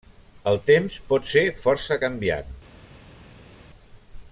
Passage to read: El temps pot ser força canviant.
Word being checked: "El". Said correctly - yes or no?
yes